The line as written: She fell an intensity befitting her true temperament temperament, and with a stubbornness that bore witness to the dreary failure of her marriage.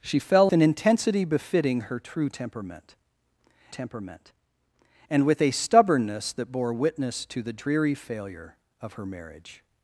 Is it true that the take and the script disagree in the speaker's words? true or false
false